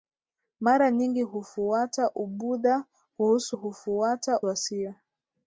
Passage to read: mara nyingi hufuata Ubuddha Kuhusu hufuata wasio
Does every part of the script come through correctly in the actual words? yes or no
yes